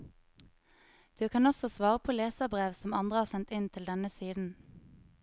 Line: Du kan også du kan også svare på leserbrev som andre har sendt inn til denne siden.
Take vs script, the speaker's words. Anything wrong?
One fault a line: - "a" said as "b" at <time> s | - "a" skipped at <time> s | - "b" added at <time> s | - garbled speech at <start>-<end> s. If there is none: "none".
- "du kan også" skipped at 1.7 s